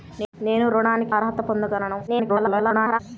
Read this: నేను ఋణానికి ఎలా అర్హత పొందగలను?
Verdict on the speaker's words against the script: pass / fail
fail